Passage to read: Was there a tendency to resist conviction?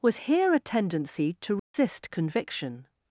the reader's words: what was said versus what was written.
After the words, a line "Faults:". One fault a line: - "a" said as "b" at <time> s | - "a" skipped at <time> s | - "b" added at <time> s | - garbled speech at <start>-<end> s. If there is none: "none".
Was here a tendency to resist conviction?
Faults:
- "there" said as "here" at 0.2 s